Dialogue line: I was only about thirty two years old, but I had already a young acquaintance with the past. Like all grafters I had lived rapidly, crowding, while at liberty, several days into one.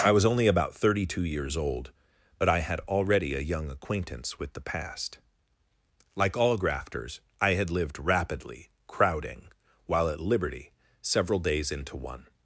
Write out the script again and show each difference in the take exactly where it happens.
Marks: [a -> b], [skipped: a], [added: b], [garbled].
I was only about thirty two years old, but I had already a young acquaintance with the past. Like all grafters I had lived rapidly, crowding, while at liberty, several days into one.